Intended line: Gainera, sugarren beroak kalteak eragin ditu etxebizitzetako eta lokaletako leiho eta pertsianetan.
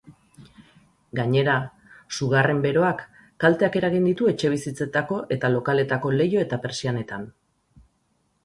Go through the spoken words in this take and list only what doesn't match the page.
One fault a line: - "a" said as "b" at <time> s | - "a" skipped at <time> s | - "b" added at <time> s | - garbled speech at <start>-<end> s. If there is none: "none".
none